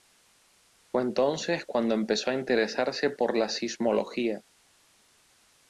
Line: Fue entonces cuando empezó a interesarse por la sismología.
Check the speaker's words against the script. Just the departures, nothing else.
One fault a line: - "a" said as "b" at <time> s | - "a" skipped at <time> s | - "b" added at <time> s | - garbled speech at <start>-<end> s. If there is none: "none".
none